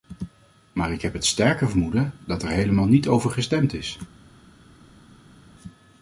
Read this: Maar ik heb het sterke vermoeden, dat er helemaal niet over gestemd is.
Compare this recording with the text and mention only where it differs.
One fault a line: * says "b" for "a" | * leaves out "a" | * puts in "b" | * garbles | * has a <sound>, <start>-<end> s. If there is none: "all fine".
all fine